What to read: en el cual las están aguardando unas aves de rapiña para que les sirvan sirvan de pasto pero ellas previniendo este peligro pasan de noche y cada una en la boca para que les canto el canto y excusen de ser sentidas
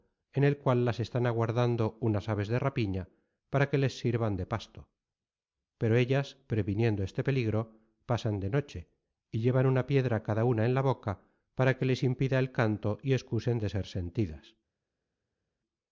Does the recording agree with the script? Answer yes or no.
no